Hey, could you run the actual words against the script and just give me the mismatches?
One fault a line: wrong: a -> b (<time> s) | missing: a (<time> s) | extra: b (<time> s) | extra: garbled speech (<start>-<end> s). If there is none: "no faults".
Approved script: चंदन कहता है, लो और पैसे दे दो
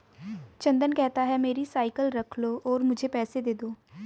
extra: मेरी साइकिल रख (1.4 s)
extra: मुझे (2.8 s)